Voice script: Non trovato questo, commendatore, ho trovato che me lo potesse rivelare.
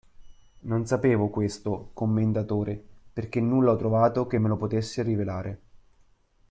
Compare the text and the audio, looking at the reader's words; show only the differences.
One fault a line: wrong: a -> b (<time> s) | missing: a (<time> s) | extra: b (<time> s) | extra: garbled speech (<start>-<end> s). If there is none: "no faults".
wrong: trovato -> sapevo (0.9 s)
extra: perché nulla (3.1 s)